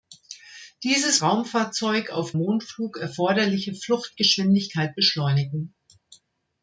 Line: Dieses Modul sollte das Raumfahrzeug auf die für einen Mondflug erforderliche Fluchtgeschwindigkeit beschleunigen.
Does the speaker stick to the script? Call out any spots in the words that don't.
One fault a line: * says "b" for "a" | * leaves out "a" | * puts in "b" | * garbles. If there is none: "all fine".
* leaves out "Modul sollte das"
* leaves out "die für einen"